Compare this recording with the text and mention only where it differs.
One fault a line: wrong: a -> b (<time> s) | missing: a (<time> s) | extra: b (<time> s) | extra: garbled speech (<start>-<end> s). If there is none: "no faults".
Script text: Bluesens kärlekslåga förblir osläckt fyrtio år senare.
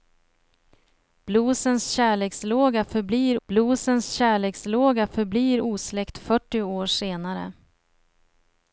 extra: bluesens kärlekslåga förblir (3.5 s)